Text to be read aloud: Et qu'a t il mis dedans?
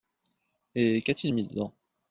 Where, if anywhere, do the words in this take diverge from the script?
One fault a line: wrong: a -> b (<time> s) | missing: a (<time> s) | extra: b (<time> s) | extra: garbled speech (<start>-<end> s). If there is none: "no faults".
no faults